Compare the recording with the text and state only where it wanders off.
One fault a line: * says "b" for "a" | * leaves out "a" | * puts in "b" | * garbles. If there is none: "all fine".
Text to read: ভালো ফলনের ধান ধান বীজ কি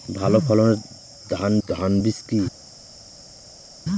all fine